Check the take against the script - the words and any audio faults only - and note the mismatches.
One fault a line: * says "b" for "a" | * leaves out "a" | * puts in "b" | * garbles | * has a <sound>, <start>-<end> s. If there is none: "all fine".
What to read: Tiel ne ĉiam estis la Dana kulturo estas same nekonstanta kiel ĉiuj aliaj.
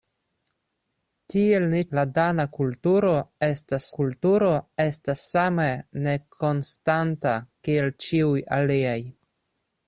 * says "la Dana kulturo estas" for "ĉiam estis la Dana"